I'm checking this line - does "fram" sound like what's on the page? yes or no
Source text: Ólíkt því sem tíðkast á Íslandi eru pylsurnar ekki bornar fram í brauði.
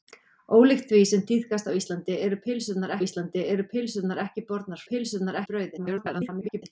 no